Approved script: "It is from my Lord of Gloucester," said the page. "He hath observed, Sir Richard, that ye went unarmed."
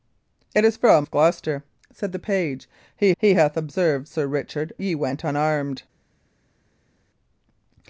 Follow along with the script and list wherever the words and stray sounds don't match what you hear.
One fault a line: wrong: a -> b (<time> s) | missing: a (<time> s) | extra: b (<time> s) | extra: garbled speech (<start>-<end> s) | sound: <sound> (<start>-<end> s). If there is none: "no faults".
missing: my Lord (1.1 s)
extra: he (3.2 s)
missing: that (4.7 s)